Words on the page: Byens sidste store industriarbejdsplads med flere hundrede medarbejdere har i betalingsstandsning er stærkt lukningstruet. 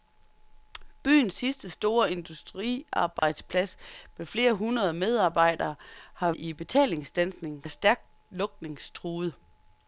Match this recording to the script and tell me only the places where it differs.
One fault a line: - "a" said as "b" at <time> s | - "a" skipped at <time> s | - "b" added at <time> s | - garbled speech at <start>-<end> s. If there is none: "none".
none